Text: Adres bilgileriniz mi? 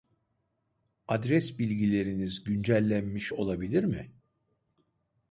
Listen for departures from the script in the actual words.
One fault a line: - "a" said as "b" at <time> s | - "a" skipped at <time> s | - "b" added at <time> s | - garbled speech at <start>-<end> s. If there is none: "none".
- "güncellenmiş olabilir" added at 2.4 s